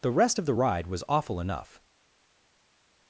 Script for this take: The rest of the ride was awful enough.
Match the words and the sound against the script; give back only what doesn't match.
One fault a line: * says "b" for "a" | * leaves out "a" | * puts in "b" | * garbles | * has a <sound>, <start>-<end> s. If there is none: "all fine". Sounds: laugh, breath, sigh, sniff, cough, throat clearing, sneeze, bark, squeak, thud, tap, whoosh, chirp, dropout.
all fine